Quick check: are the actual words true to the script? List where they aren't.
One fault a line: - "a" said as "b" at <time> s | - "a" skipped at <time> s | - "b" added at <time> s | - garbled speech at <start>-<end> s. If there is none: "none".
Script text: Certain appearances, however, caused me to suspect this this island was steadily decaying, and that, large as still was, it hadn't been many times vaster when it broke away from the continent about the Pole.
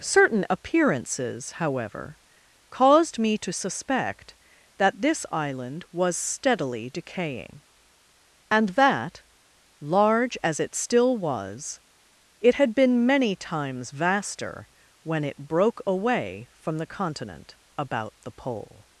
- "this" said as "that" at 4.8 s
- "it" added at 10.6 s
- "hadn't" said as "had" at 12.5 s